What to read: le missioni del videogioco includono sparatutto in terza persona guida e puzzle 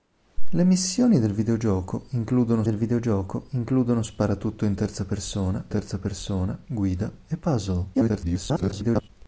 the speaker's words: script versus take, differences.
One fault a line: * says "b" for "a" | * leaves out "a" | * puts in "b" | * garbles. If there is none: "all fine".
* puts in "del videogioco includono"
* puts in "terza persona"
* garbles